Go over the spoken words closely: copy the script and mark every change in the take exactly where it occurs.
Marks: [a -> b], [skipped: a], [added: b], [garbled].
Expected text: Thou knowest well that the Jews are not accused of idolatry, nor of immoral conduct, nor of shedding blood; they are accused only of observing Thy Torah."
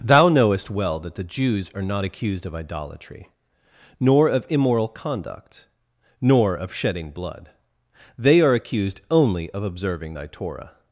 Thou knowest well that the Jews are not accused of idolatry, nor of immoral conduct, nor of shedding blood; they are accused only of observing Thy Torah."